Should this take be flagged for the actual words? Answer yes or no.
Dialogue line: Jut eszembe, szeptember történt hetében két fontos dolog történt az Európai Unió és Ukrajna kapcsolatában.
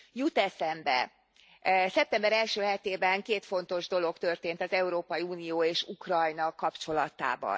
yes